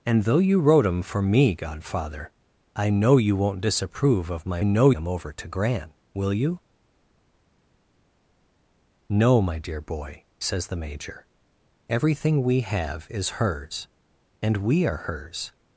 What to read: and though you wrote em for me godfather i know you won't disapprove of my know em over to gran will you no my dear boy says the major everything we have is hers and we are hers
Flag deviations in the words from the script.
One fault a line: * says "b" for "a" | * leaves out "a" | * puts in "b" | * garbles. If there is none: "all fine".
all fine